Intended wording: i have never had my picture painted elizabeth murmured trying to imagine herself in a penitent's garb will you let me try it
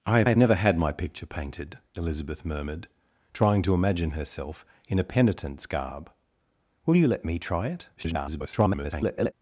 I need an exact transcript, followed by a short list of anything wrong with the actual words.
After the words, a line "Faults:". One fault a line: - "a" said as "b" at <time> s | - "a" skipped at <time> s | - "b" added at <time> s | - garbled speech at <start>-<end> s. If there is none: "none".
i have have never had my picture painted elizabeth murmured trying to imagine herself in a penitent's garb will you let me try it [garbled]
Faults:
- "have" added at 0.3 s
- garbled speech at 8.0-9.3 s